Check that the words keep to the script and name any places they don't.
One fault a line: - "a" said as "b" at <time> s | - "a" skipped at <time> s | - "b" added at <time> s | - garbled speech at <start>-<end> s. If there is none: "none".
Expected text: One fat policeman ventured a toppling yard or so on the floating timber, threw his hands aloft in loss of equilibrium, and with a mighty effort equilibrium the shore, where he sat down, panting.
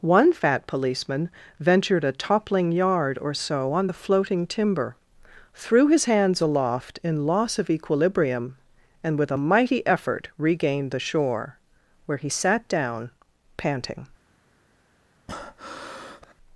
- "equilibrium" said as "regained" at 10.4 s